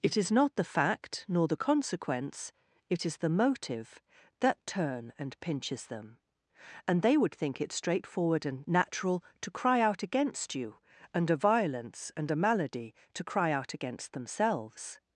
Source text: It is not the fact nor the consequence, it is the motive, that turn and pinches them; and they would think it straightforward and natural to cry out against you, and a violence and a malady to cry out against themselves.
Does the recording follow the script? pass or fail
pass